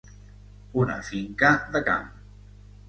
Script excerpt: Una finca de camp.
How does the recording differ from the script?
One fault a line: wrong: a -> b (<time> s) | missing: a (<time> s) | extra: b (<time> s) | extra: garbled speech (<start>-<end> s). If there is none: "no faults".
no faults